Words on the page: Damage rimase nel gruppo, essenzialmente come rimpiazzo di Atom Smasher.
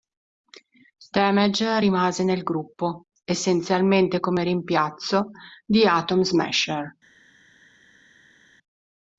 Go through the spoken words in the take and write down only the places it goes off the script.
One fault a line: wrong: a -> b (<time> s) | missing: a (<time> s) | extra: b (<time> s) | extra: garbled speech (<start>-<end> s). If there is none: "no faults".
no faults